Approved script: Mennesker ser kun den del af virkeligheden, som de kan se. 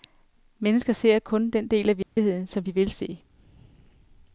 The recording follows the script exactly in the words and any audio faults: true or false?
false